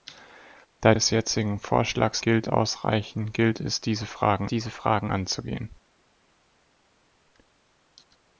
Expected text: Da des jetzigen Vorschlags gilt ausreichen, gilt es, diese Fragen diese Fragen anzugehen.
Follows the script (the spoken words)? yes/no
yes